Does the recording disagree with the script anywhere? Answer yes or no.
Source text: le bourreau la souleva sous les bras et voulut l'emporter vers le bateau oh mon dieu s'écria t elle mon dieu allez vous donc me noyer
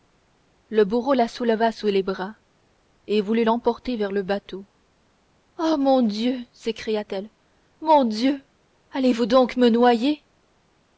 no